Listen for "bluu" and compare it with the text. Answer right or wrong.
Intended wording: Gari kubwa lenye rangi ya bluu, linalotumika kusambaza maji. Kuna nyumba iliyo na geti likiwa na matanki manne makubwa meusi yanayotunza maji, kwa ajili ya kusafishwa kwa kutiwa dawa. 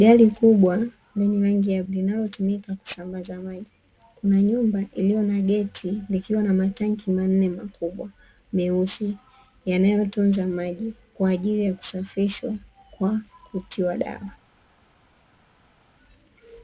wrong